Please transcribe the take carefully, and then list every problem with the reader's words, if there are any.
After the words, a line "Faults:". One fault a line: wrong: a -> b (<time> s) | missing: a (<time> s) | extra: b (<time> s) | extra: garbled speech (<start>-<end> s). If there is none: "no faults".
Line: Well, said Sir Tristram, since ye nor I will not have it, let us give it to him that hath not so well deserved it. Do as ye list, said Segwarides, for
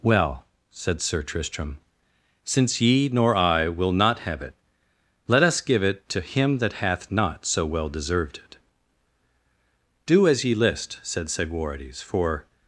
Well, said Sir Tristram, since ye nor I will not have it, let us give it to him that hath not so well deserved it. Do as ye list, said Segwarides, for
Faults:
no faults